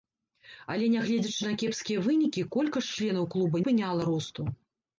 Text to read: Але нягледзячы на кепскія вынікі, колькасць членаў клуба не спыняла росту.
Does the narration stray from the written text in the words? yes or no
yes